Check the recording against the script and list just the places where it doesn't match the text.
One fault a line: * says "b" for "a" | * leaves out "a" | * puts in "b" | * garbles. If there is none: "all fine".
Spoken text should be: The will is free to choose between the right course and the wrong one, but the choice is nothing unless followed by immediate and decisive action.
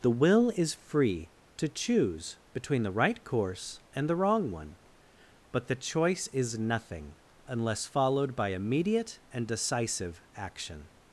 all fine